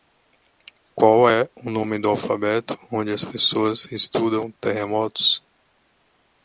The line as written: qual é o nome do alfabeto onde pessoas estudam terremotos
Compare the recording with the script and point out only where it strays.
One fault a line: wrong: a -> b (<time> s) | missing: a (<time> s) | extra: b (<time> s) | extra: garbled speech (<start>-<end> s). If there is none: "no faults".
extra: as (3.1 s)